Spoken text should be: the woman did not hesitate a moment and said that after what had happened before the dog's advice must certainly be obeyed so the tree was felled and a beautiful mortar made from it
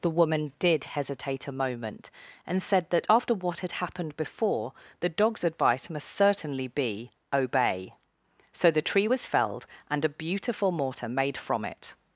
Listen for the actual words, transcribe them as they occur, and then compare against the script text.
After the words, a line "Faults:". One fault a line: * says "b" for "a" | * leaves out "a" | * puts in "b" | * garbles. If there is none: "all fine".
the woman did hesitate a moment and said that after what had happened before the dog's advice must certainly be obey so the tree was felled and a beautiful mortar made from it
Faults:
* leaves out "not"
* says "obey" for "obeyed"